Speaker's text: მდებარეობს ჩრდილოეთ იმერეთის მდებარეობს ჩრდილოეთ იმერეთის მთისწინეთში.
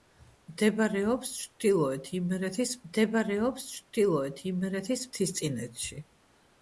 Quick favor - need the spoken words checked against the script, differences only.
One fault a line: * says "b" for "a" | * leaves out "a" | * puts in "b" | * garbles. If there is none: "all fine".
all fine